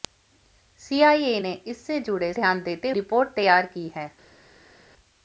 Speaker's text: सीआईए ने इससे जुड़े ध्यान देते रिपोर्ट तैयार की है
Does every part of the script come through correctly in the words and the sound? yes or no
yes